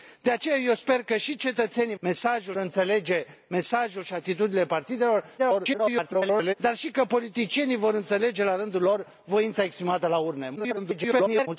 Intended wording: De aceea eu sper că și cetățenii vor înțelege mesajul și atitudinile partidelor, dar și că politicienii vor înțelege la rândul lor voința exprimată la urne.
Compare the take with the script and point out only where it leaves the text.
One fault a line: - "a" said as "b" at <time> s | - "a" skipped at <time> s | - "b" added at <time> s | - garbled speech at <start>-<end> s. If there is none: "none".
- "vor" said as "mesajul" at 2.0 s
- garbled speech at 5.4-6.5 s
- garbled speech at 10.6-11.5 s